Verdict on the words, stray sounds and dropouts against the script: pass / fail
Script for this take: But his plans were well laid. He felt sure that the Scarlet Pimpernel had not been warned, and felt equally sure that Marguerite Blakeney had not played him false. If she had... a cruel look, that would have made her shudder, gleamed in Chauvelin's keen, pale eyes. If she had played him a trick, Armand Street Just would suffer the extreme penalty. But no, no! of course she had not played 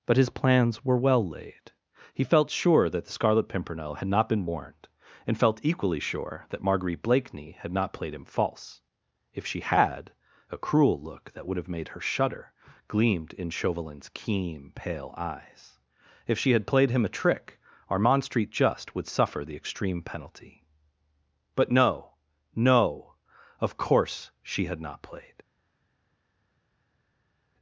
pass